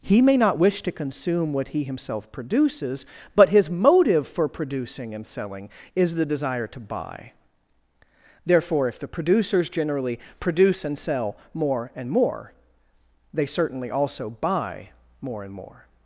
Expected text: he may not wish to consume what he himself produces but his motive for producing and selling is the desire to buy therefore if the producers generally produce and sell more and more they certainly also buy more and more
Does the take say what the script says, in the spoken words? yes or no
yes